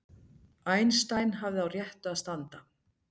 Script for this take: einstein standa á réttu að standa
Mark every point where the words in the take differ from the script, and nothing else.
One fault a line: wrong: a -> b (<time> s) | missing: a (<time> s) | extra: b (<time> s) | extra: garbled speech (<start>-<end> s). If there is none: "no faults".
wrong: standa -> hafði (1.4 s)